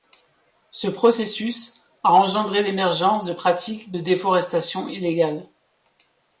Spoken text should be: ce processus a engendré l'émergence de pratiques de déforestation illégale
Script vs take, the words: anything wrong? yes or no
no